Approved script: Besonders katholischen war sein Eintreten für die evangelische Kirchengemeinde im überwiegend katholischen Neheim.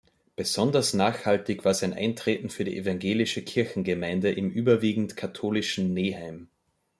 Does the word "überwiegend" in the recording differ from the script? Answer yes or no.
no